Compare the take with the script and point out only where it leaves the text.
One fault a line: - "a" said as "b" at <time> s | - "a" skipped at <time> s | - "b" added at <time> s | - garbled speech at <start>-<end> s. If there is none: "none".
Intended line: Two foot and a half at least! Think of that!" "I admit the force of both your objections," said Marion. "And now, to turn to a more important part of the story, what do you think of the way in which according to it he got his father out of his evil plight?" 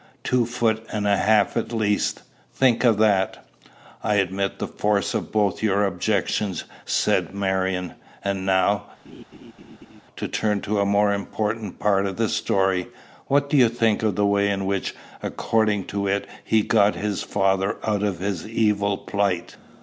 none